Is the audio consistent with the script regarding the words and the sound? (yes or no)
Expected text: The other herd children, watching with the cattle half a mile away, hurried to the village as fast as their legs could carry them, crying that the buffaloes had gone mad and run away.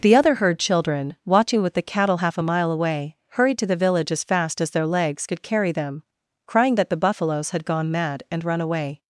yes